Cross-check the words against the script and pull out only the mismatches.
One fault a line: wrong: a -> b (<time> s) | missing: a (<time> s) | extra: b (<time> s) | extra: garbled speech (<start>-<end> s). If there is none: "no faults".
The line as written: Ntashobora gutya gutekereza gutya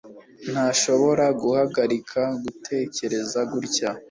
wrong: gutya -> guhagarika (1.4 s)